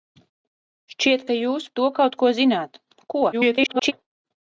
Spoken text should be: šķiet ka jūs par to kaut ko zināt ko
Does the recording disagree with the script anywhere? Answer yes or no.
yes